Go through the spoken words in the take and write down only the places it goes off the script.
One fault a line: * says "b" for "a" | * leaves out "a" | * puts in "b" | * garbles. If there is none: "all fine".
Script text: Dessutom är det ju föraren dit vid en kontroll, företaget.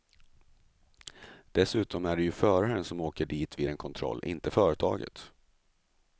* puts in "som åker"
* puts in "inte"